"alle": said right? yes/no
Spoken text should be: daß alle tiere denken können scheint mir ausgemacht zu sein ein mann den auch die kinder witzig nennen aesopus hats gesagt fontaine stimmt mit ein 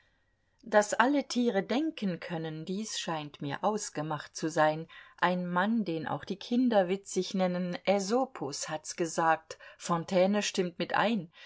yes